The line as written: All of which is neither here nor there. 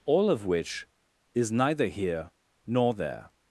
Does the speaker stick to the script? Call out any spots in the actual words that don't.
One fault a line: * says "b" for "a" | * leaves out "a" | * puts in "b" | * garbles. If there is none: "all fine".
all fine